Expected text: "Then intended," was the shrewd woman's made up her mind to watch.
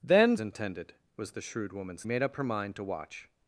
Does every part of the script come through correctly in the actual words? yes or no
yes